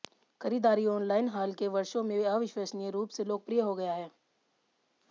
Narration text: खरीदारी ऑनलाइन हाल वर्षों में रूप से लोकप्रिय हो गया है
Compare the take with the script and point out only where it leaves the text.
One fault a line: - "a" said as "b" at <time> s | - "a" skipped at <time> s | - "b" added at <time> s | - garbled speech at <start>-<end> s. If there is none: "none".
- "के" added at 1.5 s
- "अविश्वसनीय" added at 2.3 s